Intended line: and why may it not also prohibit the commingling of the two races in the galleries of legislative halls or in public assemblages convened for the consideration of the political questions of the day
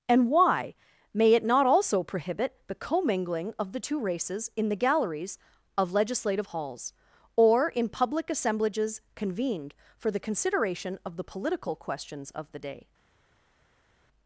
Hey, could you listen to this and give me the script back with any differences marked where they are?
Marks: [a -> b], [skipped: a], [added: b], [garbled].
and why may it not also prohibit the commingling of the two races in the galleries of legislative halls or in public assemblages convened for the consideration of the political questions of the day